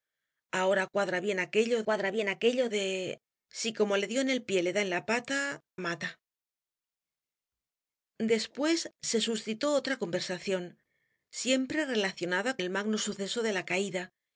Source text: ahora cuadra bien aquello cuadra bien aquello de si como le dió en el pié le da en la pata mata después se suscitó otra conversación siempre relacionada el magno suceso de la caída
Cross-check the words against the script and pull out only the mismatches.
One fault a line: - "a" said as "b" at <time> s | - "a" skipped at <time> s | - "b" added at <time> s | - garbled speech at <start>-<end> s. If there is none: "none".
none